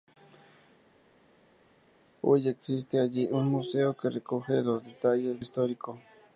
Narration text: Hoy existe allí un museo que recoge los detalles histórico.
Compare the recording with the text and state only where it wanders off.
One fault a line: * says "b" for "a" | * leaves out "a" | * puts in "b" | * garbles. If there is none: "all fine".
all fine